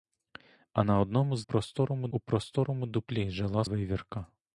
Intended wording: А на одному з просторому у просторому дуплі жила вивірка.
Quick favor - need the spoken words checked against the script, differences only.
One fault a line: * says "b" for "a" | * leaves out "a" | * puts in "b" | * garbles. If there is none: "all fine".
all fine